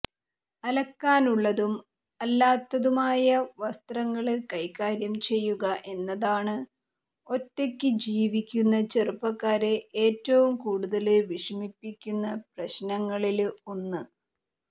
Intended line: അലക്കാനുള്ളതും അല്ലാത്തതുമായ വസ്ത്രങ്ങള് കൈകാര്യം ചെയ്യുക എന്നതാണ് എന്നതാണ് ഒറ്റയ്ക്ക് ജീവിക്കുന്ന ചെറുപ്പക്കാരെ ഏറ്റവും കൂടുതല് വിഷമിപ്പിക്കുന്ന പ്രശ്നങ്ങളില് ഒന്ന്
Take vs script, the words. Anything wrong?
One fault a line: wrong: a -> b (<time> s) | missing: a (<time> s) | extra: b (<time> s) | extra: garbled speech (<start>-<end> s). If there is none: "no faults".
missing: എന്നതാണ് (6.6 s)